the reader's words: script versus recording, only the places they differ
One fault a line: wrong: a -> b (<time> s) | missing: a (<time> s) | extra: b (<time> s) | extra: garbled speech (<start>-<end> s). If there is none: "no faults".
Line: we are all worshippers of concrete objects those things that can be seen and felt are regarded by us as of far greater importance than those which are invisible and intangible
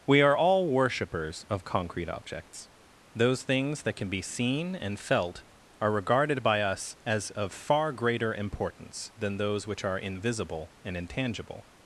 no faults